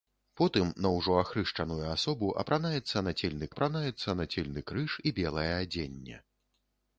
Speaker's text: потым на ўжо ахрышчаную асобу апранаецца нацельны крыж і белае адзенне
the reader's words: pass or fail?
fail